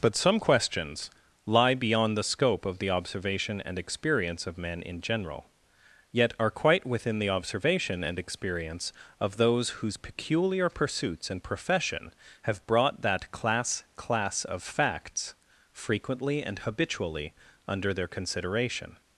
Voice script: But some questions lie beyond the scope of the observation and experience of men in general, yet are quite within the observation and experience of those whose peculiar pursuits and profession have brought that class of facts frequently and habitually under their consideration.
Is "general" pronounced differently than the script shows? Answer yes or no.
no